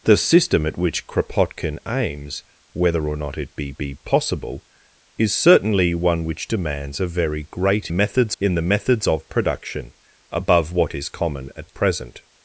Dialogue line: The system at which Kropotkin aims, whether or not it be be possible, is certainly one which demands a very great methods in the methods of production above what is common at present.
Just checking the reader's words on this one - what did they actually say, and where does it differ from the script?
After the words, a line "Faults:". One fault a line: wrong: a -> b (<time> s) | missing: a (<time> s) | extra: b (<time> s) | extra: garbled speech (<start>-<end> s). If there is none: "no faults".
The system at which Kropotkin aims, whether or not it be be possible, is certainly one which demands a very great methods in the methods of production above what is common at present.
Faults:
no faults